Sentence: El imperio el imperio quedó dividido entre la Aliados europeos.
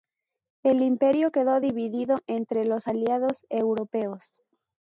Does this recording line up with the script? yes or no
no